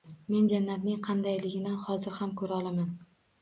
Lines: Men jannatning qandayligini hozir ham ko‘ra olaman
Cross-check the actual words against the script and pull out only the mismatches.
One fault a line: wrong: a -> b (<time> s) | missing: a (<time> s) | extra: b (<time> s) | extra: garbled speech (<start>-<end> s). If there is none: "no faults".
no faults